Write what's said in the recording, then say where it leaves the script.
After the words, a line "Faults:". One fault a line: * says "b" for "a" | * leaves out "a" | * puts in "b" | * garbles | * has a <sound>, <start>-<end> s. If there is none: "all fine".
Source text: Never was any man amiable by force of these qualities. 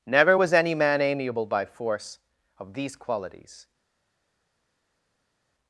Never was any man amiable by force of these qualities.
Faults:
all fine